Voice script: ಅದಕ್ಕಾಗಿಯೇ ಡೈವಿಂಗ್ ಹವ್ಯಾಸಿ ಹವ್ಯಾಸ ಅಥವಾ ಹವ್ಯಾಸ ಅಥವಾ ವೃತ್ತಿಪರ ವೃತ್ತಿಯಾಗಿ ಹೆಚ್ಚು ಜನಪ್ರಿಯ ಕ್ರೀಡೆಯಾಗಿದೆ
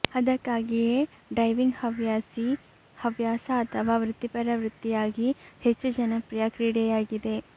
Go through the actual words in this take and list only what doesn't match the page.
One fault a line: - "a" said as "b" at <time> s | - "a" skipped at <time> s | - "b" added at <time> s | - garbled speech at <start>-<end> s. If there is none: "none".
- "ಹವ್ಯಾಸ ಅಥವಾ" skipped at 4.0 s